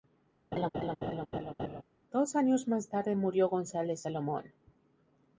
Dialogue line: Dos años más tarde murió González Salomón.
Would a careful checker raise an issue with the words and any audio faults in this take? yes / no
yes